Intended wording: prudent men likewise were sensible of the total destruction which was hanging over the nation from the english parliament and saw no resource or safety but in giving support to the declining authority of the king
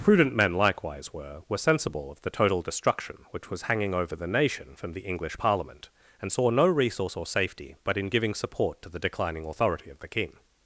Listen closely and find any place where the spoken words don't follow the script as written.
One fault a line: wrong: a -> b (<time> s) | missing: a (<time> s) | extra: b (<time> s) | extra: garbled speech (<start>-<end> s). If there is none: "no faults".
extra: were (1.5 s)